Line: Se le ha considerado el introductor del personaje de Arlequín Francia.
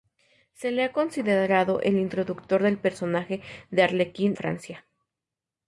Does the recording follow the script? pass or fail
pass